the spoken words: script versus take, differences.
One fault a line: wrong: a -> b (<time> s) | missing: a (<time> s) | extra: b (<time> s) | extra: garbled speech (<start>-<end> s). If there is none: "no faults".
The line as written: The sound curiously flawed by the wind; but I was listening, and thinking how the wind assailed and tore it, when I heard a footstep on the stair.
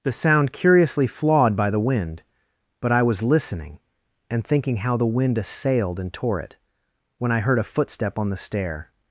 no faults